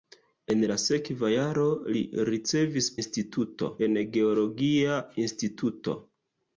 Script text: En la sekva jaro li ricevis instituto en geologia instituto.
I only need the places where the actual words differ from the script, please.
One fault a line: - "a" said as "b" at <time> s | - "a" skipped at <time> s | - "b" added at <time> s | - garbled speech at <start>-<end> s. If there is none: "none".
none